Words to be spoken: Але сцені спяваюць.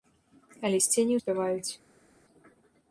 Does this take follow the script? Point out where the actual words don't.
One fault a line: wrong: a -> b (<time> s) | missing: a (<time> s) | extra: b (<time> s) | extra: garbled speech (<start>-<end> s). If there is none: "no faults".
no faults